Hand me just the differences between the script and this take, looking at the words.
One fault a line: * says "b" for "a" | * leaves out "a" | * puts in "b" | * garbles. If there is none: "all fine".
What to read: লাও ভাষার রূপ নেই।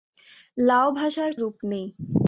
all fine